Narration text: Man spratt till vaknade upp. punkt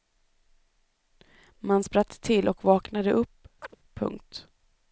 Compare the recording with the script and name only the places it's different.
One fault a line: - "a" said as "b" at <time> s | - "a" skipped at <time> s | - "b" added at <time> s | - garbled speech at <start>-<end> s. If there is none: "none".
- "och" added at 2.5 s